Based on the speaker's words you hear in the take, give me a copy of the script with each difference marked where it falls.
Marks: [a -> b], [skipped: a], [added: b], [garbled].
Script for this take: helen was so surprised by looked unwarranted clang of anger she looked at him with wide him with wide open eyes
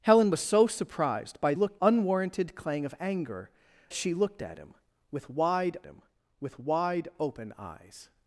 helen was so surprised by looked unwarranted clang of anger she looked at him with wide him with wide open eyes